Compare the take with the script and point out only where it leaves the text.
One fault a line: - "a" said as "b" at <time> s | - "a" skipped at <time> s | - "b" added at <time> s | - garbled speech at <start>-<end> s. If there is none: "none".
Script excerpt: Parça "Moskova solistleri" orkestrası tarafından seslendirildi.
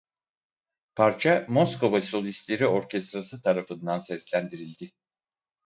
none